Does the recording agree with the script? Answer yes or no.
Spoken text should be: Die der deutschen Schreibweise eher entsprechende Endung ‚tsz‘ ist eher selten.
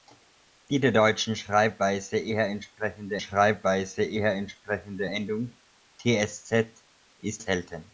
no